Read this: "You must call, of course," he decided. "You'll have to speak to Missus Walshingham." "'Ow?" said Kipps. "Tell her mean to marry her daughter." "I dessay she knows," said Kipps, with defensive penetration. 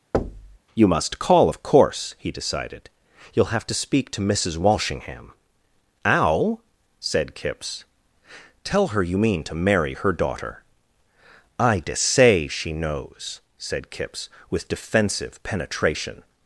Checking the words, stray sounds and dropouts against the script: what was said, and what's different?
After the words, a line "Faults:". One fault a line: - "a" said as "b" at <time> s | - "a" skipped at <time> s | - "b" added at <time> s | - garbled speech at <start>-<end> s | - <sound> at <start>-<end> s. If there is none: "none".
"You must call, of course," he decided. "You'll have to speak to Missus Walshingham." "'Ow?" said Kipps. "Tell her you mean to marry her daughter." "I dessay she knows," said Kipps, with defensive penetration.
Faults:
- thud at 0.1-0.6 s
- "you" added at 9.0 s